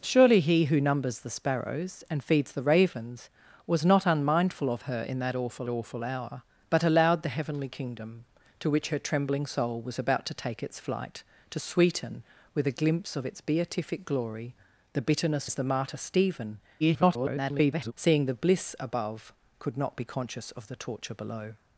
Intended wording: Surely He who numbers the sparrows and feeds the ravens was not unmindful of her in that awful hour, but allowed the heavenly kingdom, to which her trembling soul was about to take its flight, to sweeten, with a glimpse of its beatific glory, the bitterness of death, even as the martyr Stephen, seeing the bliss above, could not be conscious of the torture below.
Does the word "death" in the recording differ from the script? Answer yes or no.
yes